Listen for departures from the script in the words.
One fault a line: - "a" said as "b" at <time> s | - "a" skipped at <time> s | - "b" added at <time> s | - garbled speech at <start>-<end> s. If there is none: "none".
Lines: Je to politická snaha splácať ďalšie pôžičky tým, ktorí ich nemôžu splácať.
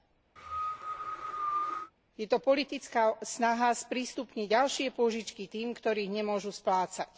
- "splácať" said as "sprístupniť" at 3.8 s